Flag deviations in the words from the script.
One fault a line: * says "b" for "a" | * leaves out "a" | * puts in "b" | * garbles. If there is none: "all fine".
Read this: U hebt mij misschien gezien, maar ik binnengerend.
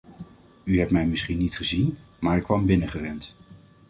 * puts in "niet"
* puts in "kwam"